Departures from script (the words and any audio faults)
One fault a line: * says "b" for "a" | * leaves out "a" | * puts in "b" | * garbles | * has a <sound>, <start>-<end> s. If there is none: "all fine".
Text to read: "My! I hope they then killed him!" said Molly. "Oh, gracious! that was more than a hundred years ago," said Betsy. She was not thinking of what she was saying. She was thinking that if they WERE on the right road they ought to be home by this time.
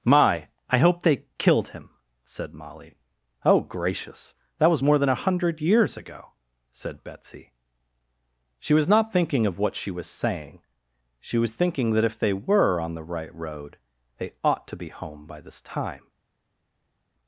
* leaves out "then"